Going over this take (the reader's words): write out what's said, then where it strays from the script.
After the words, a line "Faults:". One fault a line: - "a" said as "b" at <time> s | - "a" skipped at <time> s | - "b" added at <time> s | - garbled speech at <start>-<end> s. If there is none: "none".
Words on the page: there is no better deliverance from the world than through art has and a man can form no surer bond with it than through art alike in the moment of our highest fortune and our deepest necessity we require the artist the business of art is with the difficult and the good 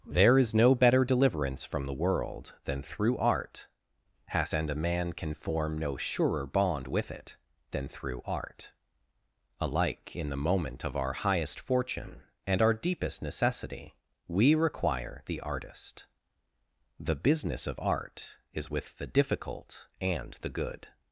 there is no better deliverance from the world than through art has and a man can form no surer bond with it than through art alike in the moment of our highest fortune and our deepest necessity we require the artist the business of art is with the difficult and the good
Faults:
none